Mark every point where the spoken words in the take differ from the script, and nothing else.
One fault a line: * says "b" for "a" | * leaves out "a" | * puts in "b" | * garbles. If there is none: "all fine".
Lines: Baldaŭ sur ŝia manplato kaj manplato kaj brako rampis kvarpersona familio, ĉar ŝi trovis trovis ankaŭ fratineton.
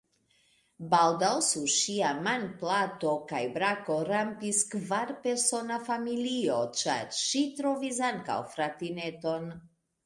* leaves out "manplato kaj"
* leaves out "trovis"